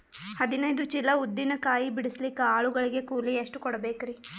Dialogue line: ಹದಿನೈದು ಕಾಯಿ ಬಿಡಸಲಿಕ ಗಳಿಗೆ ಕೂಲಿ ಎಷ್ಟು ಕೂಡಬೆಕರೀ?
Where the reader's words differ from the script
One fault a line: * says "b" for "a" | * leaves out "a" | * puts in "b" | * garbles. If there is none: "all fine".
* puts in "ಚೀಲ ಉದ್ದಿನ"
* puts in "ಆಳು"